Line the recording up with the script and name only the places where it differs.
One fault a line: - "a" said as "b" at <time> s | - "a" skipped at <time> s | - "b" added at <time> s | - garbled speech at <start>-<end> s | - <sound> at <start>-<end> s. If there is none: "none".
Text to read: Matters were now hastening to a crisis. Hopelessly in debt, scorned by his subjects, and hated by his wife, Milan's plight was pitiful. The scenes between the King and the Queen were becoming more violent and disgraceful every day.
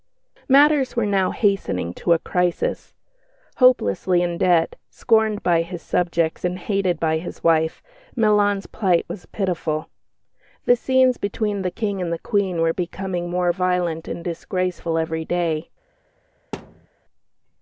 - thud at 16.5-16.9 s